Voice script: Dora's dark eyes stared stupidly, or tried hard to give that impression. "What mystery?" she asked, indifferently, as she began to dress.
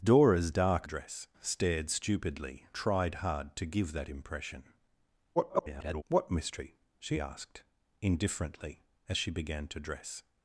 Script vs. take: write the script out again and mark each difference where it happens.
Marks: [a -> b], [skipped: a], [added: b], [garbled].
Dora's dark [eyes -> dress] stared stupidly, [skipped: or] tried hard to give that impression. [garbled] "What mystery?" she asked, indifferently, as she began to dress.